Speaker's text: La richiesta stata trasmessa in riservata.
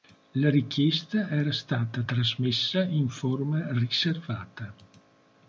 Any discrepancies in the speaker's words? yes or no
yes